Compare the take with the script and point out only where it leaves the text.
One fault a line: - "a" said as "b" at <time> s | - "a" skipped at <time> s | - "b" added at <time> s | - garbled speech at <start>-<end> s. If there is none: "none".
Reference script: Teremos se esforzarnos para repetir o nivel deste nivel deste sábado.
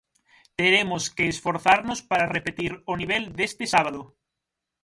- "se" said as "que" at 1.1 s
- "nivel deste" skipped at 3.6 s